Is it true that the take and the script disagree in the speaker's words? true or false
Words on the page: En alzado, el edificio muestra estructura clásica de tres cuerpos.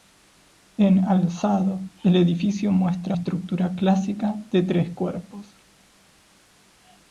false